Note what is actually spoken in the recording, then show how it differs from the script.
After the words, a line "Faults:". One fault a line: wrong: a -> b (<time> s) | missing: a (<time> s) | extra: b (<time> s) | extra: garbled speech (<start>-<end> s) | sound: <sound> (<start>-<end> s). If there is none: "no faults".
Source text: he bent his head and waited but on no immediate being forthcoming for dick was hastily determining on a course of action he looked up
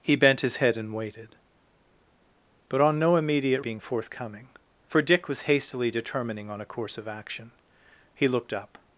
he bent his head and waited but on no immediate being forthcoming for dick was hastily determining on a course of action he looked up
Faults:
no faults